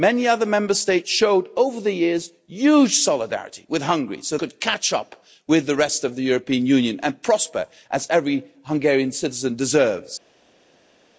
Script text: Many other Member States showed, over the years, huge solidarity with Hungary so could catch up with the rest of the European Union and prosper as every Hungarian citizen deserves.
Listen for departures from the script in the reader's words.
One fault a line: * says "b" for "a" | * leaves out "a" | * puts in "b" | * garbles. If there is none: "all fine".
all fine